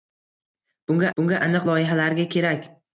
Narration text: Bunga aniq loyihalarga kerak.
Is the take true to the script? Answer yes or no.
no